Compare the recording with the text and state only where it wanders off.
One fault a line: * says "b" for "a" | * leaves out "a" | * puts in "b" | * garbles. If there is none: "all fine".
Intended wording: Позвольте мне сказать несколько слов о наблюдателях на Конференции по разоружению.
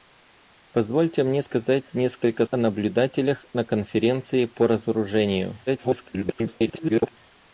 * leaves out "слов"
* garbles